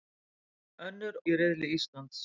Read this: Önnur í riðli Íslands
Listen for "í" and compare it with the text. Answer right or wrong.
right